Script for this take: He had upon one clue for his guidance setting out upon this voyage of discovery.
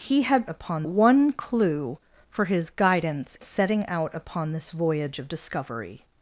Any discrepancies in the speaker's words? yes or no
no